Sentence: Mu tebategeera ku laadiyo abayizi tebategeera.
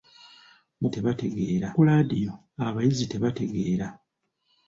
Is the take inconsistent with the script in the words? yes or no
no